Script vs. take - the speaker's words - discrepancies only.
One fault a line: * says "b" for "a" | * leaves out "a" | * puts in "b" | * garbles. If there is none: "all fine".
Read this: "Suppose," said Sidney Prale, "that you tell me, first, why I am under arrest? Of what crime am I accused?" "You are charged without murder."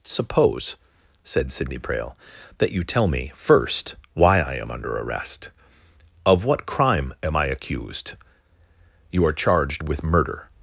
* says "with" for "without"